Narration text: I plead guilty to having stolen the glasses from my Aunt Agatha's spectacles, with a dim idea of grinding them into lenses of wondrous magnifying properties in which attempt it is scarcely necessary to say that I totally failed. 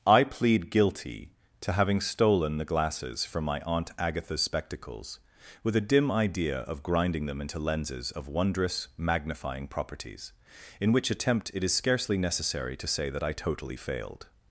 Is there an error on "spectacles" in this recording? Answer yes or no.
no